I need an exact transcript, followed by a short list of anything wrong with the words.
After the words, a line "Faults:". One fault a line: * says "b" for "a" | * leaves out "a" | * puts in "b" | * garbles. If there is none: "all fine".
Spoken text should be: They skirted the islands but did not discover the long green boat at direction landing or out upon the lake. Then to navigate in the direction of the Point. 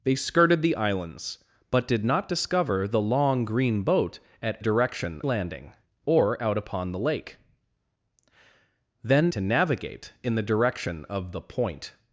They skirted the islands but did not discover the long green boat at direction landing or out upon the lake. Then to navigate in the direction of the Point.
Faults:
all fine